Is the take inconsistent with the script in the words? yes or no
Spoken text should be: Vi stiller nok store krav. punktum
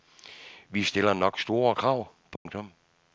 no